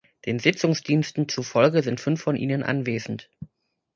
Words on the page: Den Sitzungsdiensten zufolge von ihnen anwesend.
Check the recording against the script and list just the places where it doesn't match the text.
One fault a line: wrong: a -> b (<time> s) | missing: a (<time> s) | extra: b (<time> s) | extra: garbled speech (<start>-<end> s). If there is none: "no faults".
extra: sind fünf (1.8 s)